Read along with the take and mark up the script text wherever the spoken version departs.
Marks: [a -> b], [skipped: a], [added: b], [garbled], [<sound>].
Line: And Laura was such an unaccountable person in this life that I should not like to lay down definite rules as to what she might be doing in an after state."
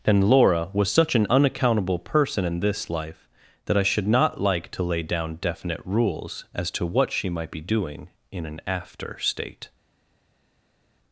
And Laura was such an unaccountable person in this life that I should not like to lay down definite rules as to what she might be doing in an after state."